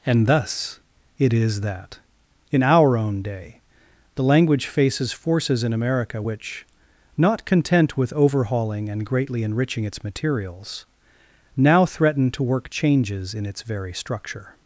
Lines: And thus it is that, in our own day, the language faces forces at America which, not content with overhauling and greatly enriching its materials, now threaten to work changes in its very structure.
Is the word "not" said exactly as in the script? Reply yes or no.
yes